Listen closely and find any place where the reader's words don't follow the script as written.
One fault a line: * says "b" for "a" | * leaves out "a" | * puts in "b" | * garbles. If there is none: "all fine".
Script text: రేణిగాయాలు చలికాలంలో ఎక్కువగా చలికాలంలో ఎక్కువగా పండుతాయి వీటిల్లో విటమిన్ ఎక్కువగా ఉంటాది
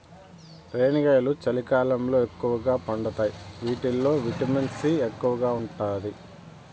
* leaves out "చలికాలంలో ఎక్కువగా"
* puts in "సి"